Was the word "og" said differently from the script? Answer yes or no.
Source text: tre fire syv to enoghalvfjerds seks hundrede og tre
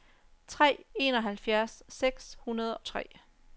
yes